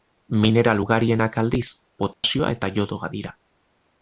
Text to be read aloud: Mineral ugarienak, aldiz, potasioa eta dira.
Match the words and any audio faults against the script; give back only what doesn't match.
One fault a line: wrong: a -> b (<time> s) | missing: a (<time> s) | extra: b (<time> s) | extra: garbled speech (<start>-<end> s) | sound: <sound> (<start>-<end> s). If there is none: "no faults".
sound: dropout (2.1-2.2 s)
extra: iodoa (2.8 s)